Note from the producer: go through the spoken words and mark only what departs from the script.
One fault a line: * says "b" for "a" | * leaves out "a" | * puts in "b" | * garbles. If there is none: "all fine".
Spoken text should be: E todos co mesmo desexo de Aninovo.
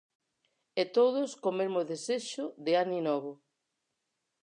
all fine